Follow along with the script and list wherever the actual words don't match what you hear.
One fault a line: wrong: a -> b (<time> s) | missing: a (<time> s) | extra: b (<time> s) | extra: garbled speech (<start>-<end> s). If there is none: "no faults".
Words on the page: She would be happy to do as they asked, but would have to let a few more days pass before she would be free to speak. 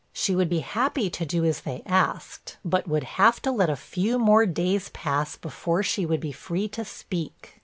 no faults